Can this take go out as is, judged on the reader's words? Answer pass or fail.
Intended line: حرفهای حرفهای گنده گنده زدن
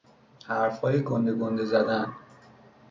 fail